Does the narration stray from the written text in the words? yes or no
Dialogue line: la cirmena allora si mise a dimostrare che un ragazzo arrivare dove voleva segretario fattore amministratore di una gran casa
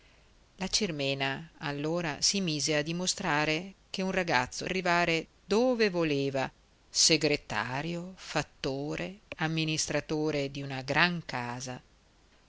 no